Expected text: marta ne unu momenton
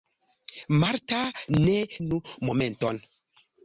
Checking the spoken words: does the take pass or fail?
pass